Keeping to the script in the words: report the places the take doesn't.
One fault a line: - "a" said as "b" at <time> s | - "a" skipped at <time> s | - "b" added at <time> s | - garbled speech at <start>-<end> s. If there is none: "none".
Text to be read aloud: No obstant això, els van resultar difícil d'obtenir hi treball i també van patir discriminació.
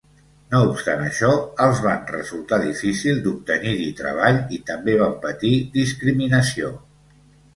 none